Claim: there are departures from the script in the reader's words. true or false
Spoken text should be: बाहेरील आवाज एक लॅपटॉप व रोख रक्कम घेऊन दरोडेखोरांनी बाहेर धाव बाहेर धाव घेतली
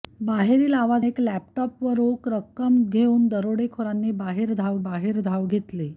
false